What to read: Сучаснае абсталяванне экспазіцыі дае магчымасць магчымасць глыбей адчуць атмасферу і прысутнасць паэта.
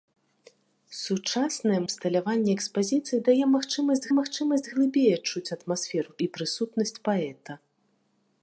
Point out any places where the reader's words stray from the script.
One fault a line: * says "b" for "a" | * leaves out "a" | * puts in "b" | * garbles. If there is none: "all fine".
all fine